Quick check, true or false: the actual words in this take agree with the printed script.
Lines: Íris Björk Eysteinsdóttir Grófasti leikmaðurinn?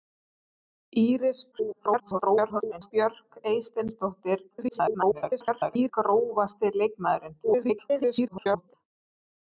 false